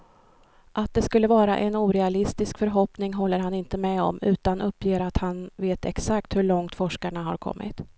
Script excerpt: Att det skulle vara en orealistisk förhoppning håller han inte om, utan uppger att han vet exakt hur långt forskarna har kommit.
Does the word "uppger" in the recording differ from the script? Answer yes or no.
no